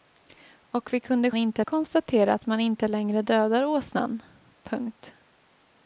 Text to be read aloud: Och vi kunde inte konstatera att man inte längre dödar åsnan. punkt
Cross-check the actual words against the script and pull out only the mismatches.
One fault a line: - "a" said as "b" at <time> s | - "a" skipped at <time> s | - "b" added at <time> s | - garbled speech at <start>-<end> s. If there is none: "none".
none